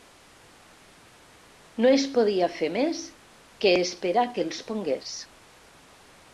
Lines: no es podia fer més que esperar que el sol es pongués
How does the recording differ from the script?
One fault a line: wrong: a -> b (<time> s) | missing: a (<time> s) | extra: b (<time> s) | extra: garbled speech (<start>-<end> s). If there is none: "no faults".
missing: sol (4.5 s)